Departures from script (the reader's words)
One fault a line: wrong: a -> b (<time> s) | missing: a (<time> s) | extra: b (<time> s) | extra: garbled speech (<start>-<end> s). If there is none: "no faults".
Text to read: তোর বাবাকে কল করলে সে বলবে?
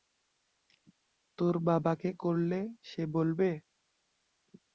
missing: কল (2.1 s)